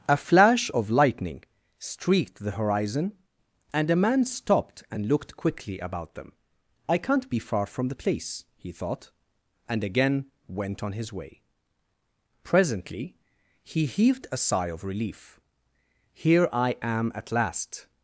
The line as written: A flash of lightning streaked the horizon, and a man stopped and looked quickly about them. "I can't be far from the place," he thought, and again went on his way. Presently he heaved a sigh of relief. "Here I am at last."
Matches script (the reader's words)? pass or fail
pass